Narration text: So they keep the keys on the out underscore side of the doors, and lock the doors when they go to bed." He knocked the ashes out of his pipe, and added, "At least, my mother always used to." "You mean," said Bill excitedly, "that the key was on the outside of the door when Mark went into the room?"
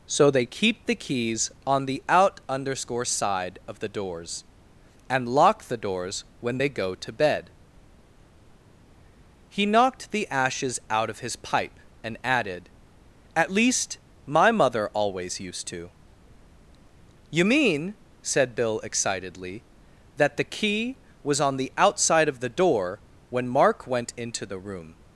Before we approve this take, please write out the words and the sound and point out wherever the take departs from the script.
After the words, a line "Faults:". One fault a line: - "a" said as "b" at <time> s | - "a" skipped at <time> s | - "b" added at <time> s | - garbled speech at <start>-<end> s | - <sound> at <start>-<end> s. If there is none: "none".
So they keep the keys on the out underscore side of the doors, and lock the doors when they go to bed." He knocked the ashes out of his pipe, and added, "At least, my mother always used to." "You mean," said Bill excitedly, "that the key was on the outside of the door when Mark went into the room?"
Faults:
none